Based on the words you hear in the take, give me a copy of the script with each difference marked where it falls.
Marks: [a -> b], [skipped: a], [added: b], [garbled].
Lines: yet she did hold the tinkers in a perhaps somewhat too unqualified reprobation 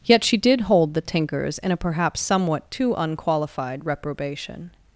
yet she did hold the tinkers in a perhaps somewhat too unqualified reprobation